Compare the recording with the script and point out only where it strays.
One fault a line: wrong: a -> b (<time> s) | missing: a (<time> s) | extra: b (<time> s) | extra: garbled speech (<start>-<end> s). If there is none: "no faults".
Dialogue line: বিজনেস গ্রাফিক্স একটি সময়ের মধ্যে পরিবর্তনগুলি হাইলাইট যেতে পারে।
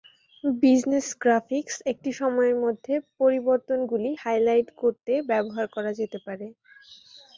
extra: করতে ব্যবহার করা (4.8 s)